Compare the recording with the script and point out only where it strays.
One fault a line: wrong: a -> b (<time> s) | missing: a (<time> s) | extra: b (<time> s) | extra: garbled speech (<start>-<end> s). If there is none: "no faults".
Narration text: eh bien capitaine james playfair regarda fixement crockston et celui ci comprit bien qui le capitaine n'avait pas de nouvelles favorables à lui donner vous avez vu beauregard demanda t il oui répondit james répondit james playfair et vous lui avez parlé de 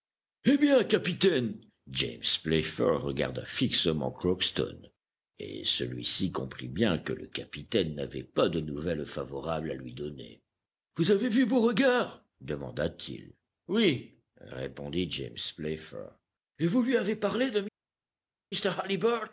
wrong: qui -> que (7.0 s)
missing: répondit james (15.4 s)